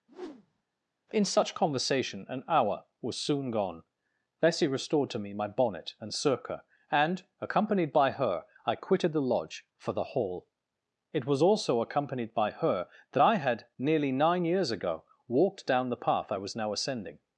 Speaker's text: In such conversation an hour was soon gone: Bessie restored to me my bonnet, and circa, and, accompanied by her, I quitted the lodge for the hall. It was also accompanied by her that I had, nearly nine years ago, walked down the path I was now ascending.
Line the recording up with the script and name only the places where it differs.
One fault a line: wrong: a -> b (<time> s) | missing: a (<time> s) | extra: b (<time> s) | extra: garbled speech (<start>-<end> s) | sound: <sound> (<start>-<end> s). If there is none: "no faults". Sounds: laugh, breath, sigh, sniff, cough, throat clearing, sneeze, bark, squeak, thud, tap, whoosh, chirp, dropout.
sound: whoosh (0.1-0.6 s)